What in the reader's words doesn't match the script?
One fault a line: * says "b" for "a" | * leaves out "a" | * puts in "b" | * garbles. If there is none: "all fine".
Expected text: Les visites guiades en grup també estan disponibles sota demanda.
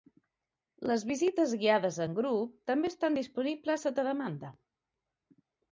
all fine